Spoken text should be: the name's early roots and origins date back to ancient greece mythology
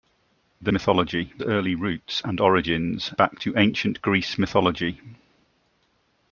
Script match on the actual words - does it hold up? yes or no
no